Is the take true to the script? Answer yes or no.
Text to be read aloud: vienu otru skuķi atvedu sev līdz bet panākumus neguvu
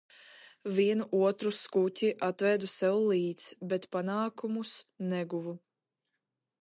yes